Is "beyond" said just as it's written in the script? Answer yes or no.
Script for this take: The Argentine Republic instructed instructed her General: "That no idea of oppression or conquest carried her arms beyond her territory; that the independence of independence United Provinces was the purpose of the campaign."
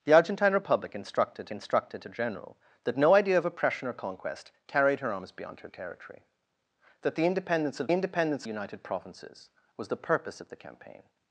yes